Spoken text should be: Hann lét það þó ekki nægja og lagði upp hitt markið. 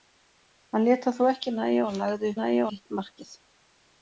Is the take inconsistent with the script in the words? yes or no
yes